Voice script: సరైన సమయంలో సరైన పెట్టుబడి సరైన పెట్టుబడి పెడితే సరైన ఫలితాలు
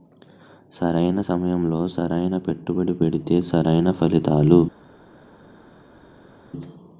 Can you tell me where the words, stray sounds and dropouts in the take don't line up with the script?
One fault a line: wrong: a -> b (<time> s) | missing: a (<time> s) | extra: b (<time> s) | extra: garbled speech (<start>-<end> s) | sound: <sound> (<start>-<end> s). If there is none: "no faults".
missing: సరైన పెట్టుబడి (2.9 s)